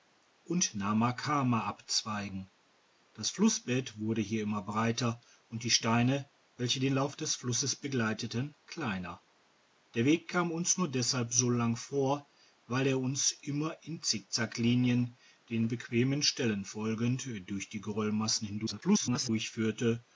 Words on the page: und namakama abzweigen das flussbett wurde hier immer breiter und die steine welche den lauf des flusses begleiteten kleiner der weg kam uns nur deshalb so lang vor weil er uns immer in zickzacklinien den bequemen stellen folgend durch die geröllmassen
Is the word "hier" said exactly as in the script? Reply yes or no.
yes